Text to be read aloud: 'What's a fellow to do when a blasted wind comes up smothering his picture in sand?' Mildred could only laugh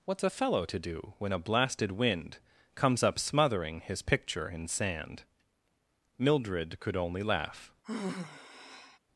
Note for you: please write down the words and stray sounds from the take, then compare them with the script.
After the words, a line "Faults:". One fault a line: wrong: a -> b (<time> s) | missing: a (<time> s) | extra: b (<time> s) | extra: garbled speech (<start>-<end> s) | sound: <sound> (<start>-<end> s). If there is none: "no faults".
'What's a fellow to do when a blasted wind comes up smothering his picture in sand?' Mildred could only laugh
Faults:
sound: sigh (7.8-9.0 s)